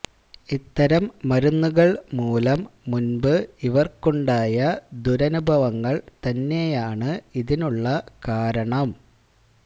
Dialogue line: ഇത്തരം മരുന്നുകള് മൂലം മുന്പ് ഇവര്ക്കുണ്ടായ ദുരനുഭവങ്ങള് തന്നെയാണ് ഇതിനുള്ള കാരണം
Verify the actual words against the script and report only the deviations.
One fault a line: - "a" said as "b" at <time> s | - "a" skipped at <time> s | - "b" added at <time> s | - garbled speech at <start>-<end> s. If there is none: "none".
none